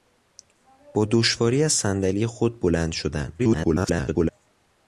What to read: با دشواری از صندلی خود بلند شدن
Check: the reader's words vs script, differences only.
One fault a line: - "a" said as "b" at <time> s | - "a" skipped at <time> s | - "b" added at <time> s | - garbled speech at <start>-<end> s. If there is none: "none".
- garbled speech at 3.4-4.3 s